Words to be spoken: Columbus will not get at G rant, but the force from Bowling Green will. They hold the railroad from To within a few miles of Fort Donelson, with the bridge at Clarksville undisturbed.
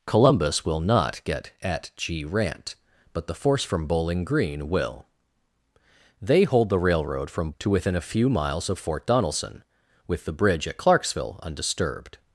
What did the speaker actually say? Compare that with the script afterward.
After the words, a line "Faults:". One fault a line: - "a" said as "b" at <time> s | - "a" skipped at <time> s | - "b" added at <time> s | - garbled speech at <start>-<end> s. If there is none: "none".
Columbus will not get at G rant, but the force from Bowling Green will. They hold the railroad from To within a few miles of Fort Donelson, with the bridge at Clarksville undisturbed.
Faults:
none